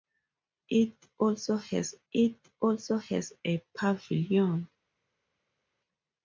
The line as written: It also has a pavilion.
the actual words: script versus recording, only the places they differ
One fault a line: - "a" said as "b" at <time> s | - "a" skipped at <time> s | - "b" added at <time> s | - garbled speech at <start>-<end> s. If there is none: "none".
- "it also has" added at 2.1 s